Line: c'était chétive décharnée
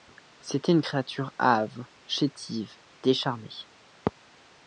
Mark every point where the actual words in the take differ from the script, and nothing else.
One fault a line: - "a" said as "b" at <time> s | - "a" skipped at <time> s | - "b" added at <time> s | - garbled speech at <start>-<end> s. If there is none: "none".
- "une créature hâve" added at 0.7 s